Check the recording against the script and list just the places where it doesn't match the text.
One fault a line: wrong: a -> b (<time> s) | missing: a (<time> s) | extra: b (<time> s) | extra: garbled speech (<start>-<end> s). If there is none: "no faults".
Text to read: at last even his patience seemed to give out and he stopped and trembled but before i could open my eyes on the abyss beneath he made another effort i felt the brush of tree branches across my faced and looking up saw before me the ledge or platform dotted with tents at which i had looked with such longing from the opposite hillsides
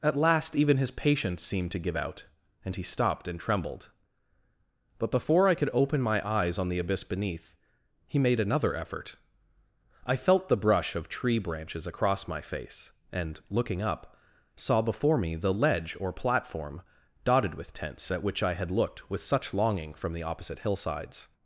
wrong: faced -> face (12.4 s)